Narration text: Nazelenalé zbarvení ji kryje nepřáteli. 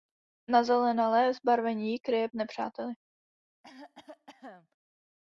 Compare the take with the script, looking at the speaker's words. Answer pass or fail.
pass